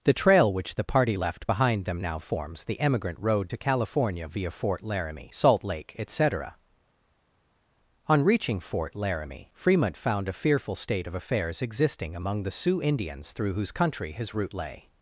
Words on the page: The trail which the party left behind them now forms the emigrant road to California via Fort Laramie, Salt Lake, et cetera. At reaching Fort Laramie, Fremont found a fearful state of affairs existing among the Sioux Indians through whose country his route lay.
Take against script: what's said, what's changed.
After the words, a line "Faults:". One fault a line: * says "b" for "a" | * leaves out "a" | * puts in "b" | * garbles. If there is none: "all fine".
The trail which the party left behind them now forms the emigrant road to California via Fort Laramie, Salt Lake, et cetera. On reaching Fort Laramie, Fremont found a fearful state of affairs existing among the Sioux Indians through whose country his route lay.
Faults:
* says "On" for "At"